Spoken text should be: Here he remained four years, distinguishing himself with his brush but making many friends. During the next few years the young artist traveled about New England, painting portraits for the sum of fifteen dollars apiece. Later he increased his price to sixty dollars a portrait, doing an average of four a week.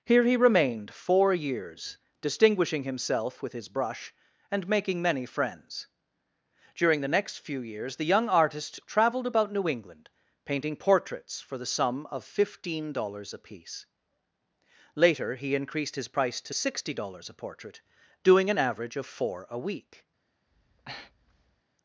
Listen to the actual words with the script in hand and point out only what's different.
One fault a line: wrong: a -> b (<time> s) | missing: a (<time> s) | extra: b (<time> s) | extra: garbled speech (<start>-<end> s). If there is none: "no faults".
wrong: but -> and (4.5 s)